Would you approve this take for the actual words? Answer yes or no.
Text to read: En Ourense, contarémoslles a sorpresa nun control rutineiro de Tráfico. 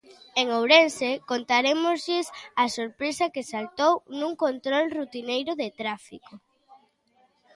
no